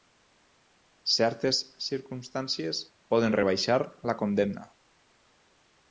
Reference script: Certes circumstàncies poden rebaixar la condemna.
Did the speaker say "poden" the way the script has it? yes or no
yes